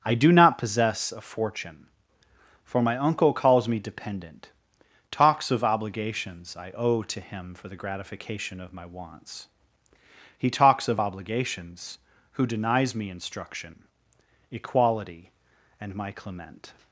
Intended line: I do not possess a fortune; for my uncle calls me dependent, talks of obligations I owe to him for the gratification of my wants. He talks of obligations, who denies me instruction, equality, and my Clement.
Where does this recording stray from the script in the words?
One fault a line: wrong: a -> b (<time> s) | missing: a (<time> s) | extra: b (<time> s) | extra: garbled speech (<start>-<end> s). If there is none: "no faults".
no faults